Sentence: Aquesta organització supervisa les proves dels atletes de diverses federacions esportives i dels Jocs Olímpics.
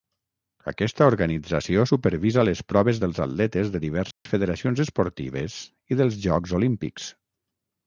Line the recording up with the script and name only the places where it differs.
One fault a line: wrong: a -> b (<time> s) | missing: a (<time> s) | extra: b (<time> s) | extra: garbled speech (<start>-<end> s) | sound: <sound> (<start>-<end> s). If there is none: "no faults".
sound: dropout (4.1-4.3 s)